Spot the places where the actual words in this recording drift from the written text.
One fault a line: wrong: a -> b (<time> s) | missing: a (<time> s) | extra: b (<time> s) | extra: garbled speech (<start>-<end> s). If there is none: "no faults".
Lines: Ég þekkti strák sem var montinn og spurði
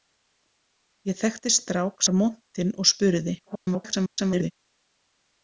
missing: sem (2.0 s)
extra: garbled speech (3.4-4.5 s)